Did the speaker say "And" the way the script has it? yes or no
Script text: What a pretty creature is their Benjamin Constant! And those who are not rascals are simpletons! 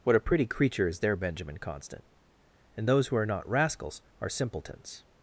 yes